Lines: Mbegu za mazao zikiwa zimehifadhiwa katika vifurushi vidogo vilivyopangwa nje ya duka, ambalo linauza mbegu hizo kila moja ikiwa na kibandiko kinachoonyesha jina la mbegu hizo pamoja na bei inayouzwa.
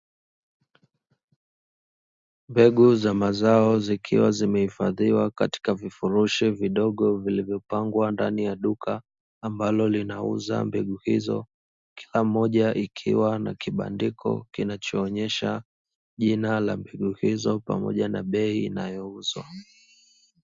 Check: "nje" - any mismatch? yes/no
yes